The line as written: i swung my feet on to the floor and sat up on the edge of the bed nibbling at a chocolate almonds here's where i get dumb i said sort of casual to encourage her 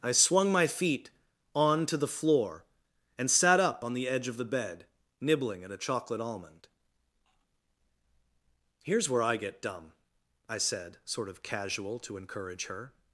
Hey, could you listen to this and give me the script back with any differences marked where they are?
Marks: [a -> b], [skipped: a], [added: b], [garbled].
i swung my feet on to the floor and sat up on the edge of the bed nibbling at a chocolate [almonds -> almond] here's where i get dumb i said sort of casual to encourage her